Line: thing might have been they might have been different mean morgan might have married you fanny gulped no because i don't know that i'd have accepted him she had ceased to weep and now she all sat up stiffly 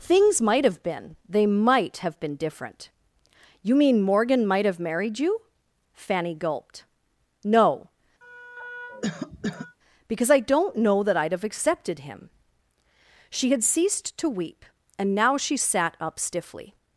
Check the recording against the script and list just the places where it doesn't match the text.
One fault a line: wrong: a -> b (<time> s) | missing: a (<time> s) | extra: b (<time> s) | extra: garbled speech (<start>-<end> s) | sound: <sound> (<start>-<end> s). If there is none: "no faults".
wrong: thing -> things (0.0 s)
extra: you (3.6 s)
sound: cough (8.2-9.8 s)
missing: all (15.6 s)